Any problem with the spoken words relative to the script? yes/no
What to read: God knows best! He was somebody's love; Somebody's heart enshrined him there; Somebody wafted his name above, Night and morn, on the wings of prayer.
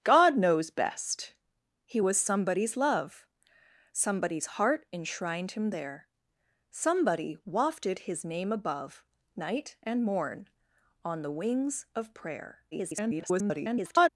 yes